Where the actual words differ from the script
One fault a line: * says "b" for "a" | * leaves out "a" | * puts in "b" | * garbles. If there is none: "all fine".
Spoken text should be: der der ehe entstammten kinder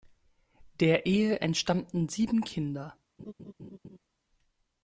* leaves out "der"
* puts in "sieben"